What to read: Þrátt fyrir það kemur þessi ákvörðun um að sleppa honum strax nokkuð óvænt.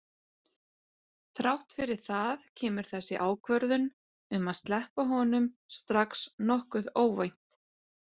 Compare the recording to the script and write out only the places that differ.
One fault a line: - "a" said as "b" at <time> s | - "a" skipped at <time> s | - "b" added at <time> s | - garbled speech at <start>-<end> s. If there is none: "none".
none